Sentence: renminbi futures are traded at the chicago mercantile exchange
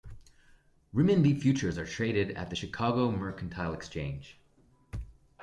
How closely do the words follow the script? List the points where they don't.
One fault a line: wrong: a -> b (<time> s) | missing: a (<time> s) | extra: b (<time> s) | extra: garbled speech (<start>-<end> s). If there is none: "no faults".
no faults